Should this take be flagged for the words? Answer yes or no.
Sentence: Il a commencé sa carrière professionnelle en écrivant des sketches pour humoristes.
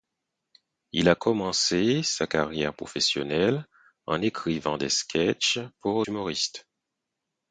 no